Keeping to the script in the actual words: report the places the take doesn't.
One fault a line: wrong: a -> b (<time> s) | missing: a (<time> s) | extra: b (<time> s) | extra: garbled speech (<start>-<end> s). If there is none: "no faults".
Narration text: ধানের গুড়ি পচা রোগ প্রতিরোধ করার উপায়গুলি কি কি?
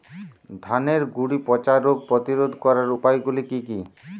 no faults